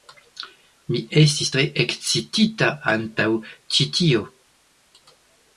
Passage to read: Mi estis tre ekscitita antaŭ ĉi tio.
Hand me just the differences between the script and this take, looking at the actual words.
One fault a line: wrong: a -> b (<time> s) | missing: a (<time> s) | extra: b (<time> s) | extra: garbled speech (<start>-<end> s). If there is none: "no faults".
no faults